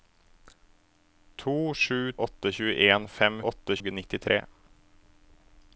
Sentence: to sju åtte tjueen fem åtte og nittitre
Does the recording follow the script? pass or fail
pass